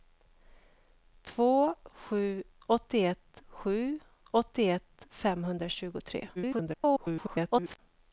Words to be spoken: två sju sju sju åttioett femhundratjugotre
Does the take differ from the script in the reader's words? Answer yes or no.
yes